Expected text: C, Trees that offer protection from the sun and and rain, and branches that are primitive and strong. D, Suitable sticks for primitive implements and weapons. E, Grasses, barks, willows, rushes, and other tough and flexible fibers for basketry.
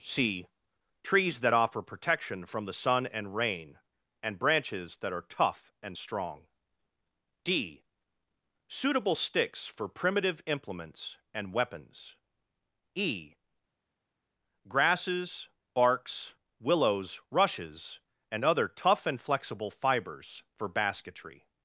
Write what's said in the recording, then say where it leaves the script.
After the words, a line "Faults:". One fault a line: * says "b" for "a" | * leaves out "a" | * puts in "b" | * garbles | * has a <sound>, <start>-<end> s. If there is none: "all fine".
C, Trees that offer protection from the sun and rain, and branches that are tough and strong. D, Suitable sticks for primitive implements and weapons. E, Grasses, barks, willows, rushes, and other tough and flexible fibers for basketry.
Faults:
* leaves out "and"
* says "tough" for "primitive"